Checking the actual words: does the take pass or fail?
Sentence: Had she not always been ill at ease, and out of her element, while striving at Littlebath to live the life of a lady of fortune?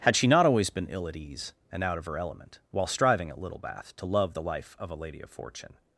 fail